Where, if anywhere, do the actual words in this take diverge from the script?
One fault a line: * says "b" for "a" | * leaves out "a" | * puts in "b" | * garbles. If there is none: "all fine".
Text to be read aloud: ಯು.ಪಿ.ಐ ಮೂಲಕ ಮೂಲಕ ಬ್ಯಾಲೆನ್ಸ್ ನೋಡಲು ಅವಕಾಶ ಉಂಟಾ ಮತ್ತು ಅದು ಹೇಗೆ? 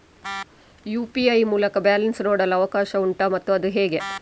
* leaves out "ಮೂಲಕ"